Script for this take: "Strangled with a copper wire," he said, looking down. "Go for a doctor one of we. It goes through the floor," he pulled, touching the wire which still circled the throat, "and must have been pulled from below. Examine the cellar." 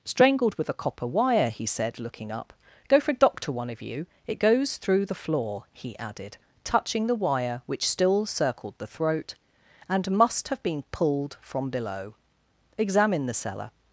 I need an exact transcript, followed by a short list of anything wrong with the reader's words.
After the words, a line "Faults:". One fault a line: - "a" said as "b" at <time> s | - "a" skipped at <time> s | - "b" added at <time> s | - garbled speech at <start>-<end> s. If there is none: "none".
"Strangled with a copper wire," he said, looking up. "Go for a doctor one of you. It goes through the floor," he added, touching the wire which still circled the throat, "and must have been pulled from below. Examine the cellar."
Faults:
- "down" said as "up" at 2.3 s
- "we" said as "you" at 3.8 s
- "pulled" said as "added" at 6.0 s